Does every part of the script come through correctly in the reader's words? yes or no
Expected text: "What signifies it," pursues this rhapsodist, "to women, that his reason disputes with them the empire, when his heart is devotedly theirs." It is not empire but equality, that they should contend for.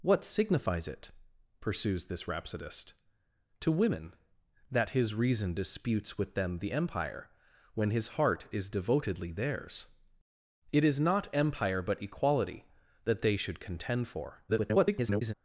no